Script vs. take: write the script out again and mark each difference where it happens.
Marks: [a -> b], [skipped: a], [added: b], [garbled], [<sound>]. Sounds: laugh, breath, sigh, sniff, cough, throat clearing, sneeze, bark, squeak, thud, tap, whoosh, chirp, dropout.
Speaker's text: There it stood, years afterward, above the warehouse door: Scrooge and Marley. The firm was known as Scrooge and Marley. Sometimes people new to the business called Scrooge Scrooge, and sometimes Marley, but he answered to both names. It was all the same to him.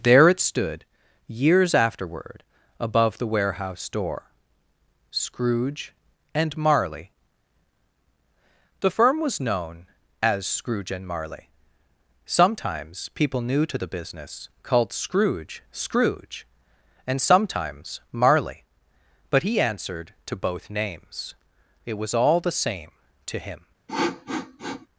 There it stood, years afterward, above the warehouse door: Scrooge and Marley. The firm was known as Scrooge and Marley. Sometimes people new to the business called Scrooge Scrooge, and sometimes Marley, but he answered to both names. It was all the same to him. [sniff]